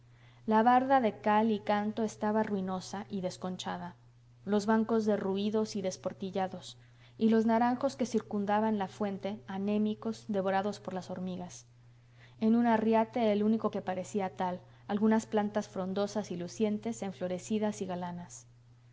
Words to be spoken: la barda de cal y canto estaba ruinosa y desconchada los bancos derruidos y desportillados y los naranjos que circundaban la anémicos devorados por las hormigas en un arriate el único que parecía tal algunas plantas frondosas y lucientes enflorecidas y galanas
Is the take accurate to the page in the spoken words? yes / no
no